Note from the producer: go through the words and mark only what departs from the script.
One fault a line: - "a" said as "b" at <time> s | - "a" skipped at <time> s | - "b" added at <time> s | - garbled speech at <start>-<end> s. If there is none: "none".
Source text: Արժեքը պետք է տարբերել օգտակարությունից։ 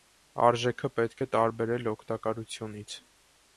none